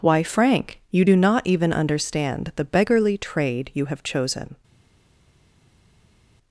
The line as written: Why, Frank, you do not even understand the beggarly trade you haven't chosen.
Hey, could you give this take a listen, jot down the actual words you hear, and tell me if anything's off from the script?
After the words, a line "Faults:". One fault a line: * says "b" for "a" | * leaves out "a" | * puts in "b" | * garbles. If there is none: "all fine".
Why, Frank, you do not even understand the beggarly trade you have chosen.
Faults:
* says "have" for "haven't"